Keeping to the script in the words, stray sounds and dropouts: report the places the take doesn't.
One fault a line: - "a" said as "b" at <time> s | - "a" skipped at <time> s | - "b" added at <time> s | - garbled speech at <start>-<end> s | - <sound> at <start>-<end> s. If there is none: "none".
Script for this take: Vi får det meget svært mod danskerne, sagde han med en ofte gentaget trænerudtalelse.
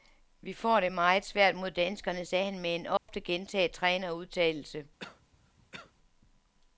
- dropout at 3.0-3.1 s
- cough at 5.0-5.9 s